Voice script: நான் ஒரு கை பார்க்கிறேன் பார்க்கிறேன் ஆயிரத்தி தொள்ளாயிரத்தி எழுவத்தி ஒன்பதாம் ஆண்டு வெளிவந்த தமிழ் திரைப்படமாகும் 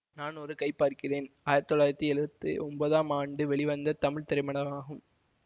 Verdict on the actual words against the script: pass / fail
fail